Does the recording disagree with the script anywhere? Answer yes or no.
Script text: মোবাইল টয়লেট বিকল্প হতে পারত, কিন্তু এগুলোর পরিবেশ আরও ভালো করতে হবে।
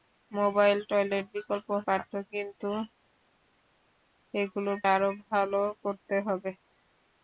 yes